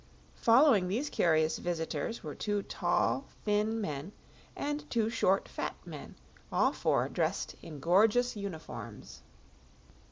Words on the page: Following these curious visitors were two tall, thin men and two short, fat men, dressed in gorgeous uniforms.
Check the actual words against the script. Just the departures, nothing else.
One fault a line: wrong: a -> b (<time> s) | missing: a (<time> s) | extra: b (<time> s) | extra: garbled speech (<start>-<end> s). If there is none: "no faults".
extra: all four (6.5 s)